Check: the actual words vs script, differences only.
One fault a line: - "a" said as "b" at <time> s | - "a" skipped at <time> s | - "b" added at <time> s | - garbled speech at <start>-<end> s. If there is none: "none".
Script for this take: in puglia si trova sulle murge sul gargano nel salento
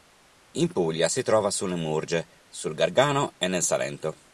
- "e" added at 3.4 s